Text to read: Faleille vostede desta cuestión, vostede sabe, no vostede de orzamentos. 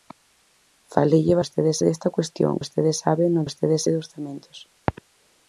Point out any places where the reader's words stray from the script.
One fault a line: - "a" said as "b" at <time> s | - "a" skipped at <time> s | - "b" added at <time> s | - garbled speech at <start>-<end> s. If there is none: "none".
none